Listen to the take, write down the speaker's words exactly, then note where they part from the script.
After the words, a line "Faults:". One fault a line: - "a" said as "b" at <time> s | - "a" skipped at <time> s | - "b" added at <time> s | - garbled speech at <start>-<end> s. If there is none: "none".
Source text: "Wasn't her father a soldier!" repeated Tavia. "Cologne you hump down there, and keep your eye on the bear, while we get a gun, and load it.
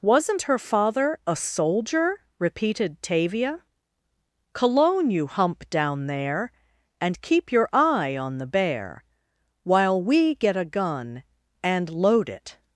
"Wasn't her father a soldier!" repeated Tavia. "Cologne you hump down there, and keep your eye on the bear, while we get a gun, and load it.
Faults:
none